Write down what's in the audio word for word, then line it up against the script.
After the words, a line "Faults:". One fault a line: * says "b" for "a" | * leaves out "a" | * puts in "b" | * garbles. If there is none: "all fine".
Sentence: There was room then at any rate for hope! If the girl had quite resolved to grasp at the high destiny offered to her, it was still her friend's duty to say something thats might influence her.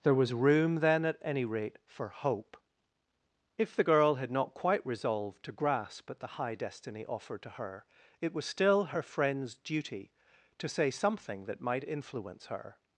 There was room then at any rate for hope! If the girl had not quite resolved to grasp at the high destiny offered to her, it was still her friend's duty to say something that might influence her.
Faults:
* puts in "not"
* says "that" for "thats"